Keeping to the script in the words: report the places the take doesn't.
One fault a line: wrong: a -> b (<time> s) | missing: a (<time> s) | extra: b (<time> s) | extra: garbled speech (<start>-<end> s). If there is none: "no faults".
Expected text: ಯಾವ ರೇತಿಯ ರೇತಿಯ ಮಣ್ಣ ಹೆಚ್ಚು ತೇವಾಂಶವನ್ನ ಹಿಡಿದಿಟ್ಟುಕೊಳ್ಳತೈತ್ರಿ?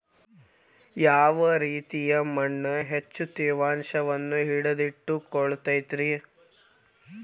missing: ರೇತಿಯ (2.2 s)